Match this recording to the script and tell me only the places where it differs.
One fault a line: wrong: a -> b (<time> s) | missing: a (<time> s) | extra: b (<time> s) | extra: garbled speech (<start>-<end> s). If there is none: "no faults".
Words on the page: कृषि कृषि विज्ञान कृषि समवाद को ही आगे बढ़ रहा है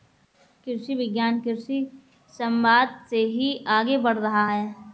missing: कृषि (0.9 s)
wrong: को -> से (3.1 s)